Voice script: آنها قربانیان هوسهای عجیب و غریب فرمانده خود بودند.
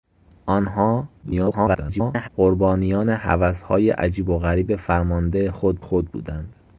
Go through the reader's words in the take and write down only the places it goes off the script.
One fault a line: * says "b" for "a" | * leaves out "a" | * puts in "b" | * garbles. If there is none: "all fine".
* garbles
* puts in "خود"